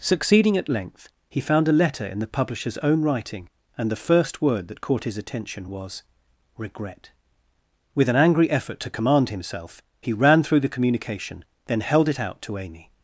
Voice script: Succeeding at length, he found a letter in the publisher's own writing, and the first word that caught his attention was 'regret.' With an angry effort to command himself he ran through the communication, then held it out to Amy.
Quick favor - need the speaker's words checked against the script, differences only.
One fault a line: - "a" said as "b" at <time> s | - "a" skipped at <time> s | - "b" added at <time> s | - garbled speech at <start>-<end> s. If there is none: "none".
none